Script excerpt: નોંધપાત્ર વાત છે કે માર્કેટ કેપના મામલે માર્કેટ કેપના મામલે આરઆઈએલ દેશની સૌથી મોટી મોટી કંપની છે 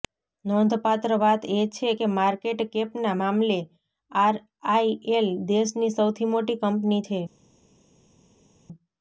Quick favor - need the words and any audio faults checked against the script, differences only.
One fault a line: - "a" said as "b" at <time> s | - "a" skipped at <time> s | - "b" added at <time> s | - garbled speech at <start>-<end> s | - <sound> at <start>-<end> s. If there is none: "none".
- "એ" added at 1.5 s
- "માર્કેટ કેપના મામલે" skipped at 3.6 s
- "મોટી" skipped at 6.6 s